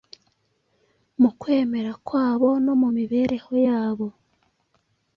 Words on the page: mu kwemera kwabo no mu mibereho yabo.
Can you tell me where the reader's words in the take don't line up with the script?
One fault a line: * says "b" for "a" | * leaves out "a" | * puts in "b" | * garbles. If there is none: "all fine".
all fine